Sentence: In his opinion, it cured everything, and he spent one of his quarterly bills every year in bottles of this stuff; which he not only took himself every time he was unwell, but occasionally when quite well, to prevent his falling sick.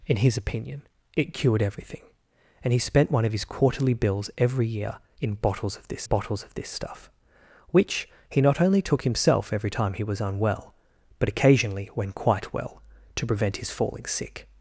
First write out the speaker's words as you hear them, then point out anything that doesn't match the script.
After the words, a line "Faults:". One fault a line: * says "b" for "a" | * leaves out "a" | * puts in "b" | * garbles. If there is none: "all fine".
In his opinion, it cured everything, and he spent one of his quarterly bills every year in bottles of this bottles of this stuff; which he not only took himself every time he was unwell, but occasionally when quite well, to prevent his falling sick.
Faults:
* puts in "bottles of this"